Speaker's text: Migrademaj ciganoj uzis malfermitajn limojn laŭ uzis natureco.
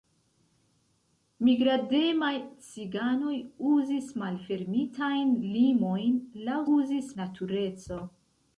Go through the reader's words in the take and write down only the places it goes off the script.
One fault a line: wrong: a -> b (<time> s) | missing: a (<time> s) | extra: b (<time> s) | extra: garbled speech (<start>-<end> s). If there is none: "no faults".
no faults